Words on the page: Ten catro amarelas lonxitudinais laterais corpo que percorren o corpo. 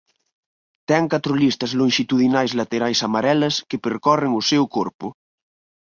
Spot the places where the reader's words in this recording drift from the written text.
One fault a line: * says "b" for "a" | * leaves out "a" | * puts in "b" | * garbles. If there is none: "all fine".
* says "listas" for "amarelas"
* says "amarelas" for "corpo"
* puts in "seu"